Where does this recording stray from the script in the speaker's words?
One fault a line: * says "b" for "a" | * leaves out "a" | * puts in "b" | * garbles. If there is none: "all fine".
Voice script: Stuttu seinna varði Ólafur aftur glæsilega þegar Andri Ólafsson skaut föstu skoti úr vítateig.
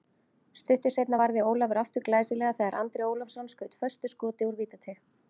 all fine